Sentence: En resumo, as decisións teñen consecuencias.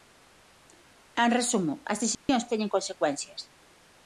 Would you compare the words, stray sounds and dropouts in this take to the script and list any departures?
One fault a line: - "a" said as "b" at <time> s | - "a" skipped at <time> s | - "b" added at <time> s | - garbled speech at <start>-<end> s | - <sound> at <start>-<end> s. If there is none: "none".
- dropout at 2.1-2.3 s